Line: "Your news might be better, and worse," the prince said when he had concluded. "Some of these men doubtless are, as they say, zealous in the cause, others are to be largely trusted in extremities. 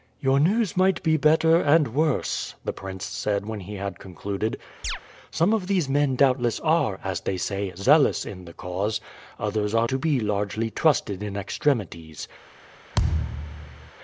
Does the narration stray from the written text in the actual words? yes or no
no